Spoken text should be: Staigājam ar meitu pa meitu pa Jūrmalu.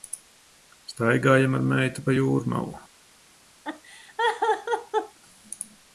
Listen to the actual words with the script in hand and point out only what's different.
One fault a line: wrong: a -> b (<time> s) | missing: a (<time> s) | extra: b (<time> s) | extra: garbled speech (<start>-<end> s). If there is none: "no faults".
missing: meitu pa (2.2 s)